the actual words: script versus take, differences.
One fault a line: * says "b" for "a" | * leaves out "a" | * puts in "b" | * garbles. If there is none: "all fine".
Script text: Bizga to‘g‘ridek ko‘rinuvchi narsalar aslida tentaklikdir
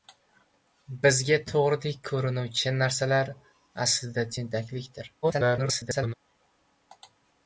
* garbles